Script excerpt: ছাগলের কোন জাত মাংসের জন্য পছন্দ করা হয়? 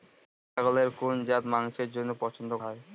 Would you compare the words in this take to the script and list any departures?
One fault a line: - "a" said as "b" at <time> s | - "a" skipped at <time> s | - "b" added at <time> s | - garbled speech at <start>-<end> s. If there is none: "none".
- "করা" skipped at 2.5 s